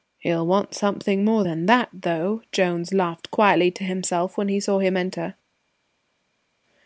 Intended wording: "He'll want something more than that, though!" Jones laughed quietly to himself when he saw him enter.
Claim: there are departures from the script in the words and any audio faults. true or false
false